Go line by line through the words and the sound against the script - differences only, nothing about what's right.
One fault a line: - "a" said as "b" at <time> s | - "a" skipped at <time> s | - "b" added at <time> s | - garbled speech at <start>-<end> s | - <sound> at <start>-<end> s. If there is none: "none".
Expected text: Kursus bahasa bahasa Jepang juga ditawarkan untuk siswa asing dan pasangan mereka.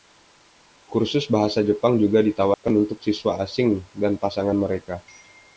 - "bahasa" skipped at 1.6 s
- dropout at 2.5-2.6 s